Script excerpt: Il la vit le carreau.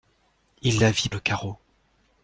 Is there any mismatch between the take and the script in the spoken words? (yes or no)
no